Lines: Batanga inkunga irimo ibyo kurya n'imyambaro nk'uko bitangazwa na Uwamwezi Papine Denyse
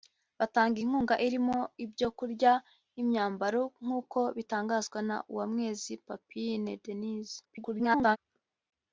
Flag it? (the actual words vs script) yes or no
yes